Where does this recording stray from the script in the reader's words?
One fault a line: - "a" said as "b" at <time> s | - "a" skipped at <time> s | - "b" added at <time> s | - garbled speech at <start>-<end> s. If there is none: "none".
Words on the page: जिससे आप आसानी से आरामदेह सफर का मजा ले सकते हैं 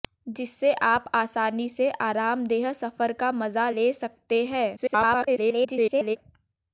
- garbled speech at 4.8-6.2 s